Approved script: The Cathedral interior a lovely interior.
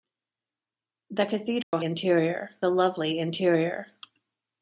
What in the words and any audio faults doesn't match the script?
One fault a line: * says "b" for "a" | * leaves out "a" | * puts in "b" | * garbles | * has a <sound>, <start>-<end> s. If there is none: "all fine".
* has a dropout, 1.6-1.7 s